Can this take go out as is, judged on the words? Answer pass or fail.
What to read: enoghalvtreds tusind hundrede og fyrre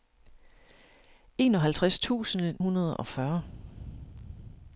pass